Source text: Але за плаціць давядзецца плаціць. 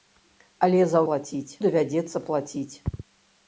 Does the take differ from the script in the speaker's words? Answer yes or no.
no